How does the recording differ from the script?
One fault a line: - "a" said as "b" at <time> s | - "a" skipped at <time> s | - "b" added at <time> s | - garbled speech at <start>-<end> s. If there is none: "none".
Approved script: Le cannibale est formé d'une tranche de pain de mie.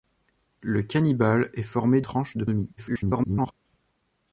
- "d'une" skipped at 2.0 s
- "pain" skipped at 2.4 s
- garbled speech at 2.8-3.5 s